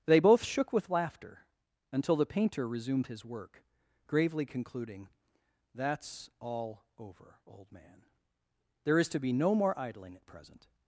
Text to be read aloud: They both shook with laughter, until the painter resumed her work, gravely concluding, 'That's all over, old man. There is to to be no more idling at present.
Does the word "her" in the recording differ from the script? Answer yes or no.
yes